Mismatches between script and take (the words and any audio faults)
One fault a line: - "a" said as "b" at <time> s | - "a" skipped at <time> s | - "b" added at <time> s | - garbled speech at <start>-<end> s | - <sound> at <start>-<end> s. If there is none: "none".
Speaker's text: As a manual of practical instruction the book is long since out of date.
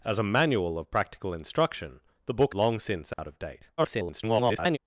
- "is" skipped at 2.5 s
- dropout at 3.1-3.2 s
- garbled speech at 3.8-4.8 s